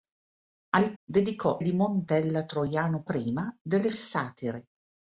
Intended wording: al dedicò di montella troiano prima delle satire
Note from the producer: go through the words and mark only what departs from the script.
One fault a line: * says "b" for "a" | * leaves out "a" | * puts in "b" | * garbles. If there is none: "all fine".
all fine